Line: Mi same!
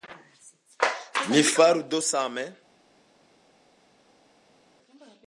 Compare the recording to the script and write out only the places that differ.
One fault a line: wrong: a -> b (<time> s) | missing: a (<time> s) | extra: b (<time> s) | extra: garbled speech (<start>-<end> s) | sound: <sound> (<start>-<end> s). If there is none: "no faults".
extra: faru do (1.4 s)